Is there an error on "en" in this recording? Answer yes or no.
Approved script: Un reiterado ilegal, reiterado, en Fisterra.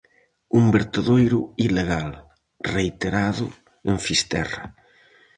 no